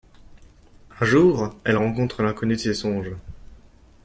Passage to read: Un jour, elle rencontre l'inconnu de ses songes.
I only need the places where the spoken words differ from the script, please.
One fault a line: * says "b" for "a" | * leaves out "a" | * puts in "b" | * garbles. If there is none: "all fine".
all fine